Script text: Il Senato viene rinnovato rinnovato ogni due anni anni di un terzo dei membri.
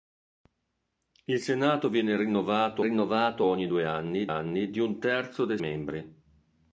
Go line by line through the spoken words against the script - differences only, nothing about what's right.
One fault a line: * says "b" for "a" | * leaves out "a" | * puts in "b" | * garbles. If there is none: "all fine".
all fine